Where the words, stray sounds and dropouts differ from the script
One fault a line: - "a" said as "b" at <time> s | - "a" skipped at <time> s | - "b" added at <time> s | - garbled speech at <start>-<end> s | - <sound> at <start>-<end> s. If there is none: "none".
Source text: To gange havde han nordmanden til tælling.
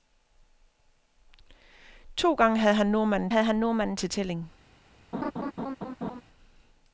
- "havde han nordmanden" added at 3.3 s
- laugh at 5.1-6.2 s